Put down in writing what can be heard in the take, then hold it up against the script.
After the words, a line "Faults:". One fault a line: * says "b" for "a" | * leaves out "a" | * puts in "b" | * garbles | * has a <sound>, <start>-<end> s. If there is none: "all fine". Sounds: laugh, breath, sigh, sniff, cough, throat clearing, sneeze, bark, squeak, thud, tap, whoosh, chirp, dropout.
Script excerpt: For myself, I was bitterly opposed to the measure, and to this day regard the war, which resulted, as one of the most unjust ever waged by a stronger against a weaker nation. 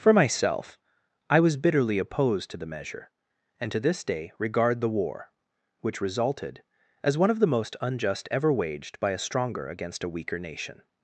For myself, I was bitterly opposed to the measure, and to this day regard the war, which resulted, as one of the most unjust ever waged by a stronger against a weaker nation.
Faults:
all fine